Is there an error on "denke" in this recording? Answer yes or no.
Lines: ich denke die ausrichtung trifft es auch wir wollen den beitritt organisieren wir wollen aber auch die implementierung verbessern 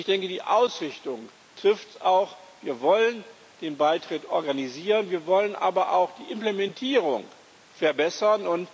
no